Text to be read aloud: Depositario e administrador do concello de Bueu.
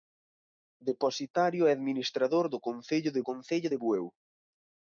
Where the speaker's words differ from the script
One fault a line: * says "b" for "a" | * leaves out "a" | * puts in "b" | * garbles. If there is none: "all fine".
* puts in "concello de"